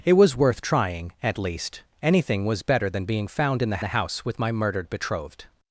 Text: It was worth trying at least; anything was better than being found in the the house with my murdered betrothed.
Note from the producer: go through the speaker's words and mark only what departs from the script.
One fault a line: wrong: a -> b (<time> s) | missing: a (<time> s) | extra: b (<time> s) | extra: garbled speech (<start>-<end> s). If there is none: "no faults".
no faults